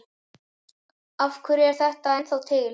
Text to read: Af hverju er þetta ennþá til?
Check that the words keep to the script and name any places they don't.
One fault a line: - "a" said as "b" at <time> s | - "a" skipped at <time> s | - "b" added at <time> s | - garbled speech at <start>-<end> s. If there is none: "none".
none